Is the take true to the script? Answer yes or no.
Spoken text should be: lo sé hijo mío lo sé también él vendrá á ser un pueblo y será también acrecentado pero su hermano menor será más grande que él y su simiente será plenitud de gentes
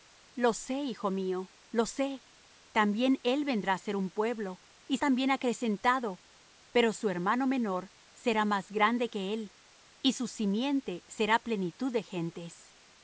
no